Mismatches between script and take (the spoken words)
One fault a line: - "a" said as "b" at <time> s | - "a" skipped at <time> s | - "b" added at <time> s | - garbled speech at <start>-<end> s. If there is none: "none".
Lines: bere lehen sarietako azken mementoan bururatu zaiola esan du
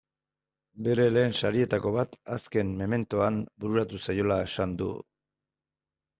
- "bat" added at 2.0 s